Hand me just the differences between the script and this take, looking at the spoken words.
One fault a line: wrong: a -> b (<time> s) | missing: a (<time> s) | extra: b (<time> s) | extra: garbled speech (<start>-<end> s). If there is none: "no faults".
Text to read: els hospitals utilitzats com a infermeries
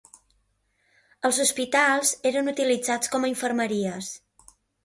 extra: eren (2.3 s)